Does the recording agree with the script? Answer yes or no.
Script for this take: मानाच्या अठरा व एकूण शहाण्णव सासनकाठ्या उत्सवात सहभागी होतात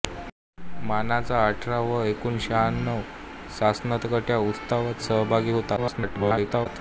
no